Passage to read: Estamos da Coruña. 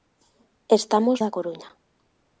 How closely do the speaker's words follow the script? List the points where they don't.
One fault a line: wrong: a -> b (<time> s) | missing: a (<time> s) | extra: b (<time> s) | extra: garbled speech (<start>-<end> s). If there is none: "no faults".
no faults